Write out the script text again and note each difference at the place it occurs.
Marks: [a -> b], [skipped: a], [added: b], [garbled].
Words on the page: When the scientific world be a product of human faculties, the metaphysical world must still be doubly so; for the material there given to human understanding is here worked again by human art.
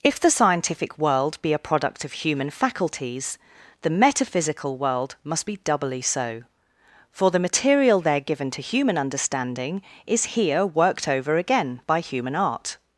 [When -> If] the scientific world be a product of human faculties, the metaphysical world must [skipped: still] be doubly so; for the material there given to human understanding is here worked [added: over] again by human art.